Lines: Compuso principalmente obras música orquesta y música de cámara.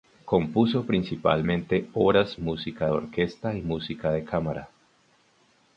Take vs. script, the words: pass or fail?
pass